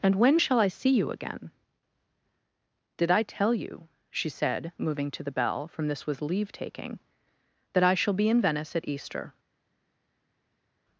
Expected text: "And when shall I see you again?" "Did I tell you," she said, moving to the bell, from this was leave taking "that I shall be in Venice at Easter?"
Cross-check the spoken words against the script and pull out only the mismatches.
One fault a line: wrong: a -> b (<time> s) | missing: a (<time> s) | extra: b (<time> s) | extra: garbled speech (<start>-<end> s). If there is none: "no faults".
no faults